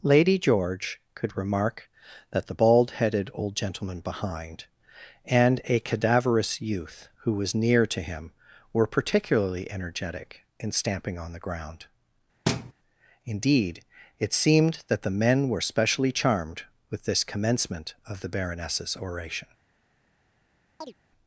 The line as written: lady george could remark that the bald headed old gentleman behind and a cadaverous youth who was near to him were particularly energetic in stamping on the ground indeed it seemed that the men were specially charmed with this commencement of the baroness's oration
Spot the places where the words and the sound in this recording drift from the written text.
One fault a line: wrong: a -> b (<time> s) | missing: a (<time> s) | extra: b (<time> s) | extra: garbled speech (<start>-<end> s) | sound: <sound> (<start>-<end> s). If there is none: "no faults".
sound: thud (12.5-12.7 s)
sound: chirp (20.8-20.9 s)